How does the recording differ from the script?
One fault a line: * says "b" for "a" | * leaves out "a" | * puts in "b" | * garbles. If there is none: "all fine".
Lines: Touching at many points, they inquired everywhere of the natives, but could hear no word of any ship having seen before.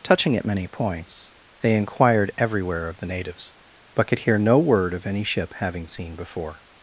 all fine